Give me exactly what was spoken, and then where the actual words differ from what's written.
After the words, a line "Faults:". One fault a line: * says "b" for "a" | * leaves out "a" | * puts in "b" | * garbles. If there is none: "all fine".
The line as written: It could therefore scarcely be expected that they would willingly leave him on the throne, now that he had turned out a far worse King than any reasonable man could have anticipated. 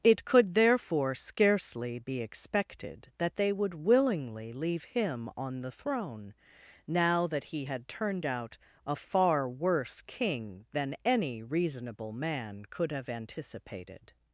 It could therefore scarcely be expected that they would willingly leave him on the throne, now that he had turned out a far worse King than any reasonable man could have anticipated.
Faults:
all fine